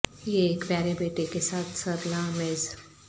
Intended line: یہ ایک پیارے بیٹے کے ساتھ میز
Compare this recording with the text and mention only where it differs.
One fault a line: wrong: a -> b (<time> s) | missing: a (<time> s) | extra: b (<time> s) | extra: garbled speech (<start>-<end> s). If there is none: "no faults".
extra: سر لا (1.8 s)